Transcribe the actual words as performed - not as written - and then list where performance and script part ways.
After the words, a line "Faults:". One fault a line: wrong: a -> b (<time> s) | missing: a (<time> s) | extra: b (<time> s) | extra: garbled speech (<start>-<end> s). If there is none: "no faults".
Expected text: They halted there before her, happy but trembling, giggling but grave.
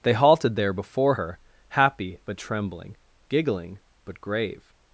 They halted there before her, happy but trembling, giggling but grave.
Faults:
no faults